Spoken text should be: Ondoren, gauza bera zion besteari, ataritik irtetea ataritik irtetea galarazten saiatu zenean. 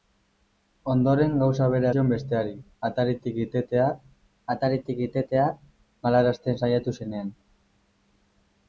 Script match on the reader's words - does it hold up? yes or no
yes